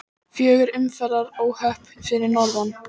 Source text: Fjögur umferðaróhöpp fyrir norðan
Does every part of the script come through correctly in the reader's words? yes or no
yes